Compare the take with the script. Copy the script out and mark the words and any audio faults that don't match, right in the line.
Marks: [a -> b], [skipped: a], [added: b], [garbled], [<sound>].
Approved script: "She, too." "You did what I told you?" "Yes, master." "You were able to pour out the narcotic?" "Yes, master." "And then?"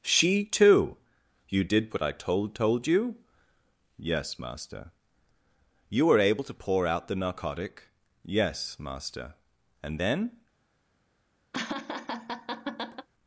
"She, too." "You did what I told [added: told] you?" "Yes, master." "You were able to pour out the narcotic?" "Yes, master." "And then?" [laugh]